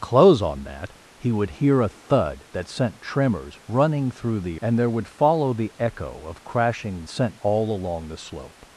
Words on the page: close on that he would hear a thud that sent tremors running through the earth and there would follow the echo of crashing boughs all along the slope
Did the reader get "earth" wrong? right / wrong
wrong